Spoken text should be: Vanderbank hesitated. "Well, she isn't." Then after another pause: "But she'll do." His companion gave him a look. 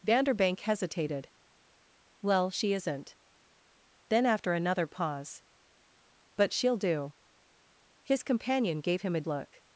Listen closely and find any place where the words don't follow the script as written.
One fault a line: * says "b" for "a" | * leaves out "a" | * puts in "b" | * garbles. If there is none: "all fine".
all fine